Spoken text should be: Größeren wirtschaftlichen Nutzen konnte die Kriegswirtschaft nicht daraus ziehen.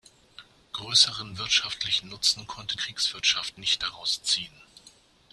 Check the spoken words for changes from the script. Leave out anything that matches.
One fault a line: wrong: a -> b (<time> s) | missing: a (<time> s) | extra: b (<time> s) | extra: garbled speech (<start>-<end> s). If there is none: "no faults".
missing: die (2.8 s)